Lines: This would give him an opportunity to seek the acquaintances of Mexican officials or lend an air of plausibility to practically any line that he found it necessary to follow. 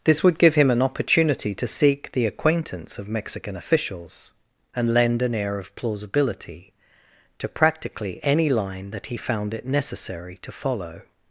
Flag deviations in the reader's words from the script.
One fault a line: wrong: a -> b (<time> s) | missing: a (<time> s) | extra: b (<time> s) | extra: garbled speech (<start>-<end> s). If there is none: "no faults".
wrong: acquaintances -> acquaintance (2.2 s)
wrong: or -> and (4.8 s)